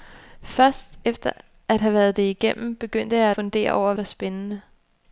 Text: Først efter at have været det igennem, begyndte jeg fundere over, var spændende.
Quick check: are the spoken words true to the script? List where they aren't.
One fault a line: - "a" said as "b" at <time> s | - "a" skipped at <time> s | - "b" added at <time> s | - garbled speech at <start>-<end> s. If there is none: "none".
none